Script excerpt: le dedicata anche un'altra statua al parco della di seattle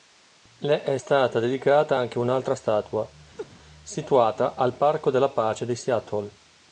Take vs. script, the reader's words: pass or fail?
fail